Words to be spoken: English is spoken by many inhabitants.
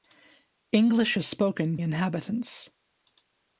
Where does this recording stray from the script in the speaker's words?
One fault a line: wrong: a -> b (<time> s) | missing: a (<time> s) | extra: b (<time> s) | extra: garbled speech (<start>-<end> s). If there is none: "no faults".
missing: by many (1.8 s)